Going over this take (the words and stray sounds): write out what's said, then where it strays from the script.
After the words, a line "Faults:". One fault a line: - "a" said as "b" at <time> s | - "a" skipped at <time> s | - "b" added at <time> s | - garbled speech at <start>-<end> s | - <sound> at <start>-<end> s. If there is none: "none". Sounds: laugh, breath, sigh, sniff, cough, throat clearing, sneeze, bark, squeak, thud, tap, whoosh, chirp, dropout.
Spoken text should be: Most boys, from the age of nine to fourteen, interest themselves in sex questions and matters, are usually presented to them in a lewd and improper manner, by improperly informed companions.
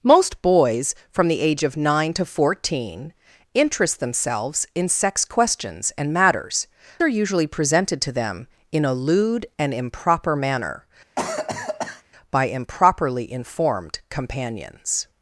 Most boys, from the age of nine to fourteen, interest themselves in sex questions and matters, are usually presented to them in a lewd and improper manner, by improperly informed companions.
Faults:
- cough at 11.2-12.0 s